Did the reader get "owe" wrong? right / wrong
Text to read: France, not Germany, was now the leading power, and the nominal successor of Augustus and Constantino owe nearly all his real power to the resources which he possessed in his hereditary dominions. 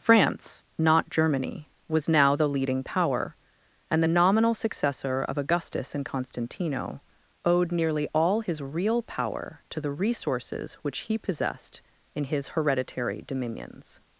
wrong